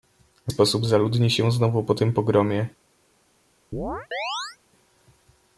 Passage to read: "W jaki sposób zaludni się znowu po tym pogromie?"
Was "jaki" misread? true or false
true